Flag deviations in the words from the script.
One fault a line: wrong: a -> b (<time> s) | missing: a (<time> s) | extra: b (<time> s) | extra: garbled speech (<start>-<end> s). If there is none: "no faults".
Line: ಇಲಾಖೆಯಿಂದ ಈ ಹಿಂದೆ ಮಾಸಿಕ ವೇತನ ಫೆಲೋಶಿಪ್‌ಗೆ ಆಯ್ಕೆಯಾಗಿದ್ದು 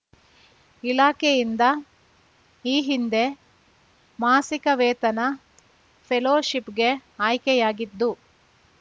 no faults